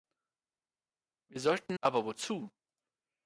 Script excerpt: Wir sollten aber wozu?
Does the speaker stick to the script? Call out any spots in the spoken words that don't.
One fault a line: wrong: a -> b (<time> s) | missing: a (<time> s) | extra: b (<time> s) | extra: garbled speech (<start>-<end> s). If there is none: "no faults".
no faults